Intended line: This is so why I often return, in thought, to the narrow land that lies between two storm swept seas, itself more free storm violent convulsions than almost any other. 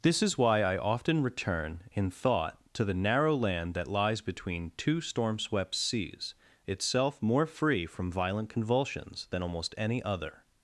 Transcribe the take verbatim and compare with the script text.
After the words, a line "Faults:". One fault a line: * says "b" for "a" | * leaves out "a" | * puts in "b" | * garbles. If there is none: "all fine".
This is why I often return, in thought, to the narrow land that lies between two storm swept seas, itself more free from violent convulsions than almost any other.
Faults:
* leaves out "so"
* says "from" for "storm"